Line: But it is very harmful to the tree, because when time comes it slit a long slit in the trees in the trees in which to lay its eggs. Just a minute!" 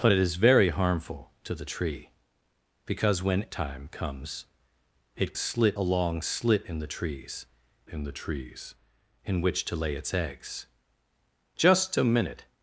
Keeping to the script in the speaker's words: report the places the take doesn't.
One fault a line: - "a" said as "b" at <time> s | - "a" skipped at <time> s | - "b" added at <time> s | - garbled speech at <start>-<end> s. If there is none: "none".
none